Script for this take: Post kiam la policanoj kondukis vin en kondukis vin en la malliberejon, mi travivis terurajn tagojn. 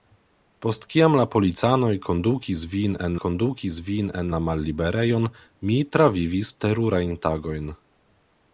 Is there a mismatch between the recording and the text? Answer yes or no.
no